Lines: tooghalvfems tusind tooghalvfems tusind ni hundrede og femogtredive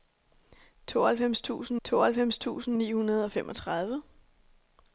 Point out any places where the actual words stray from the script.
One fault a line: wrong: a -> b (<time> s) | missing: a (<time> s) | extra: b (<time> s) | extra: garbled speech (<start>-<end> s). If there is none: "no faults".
no faults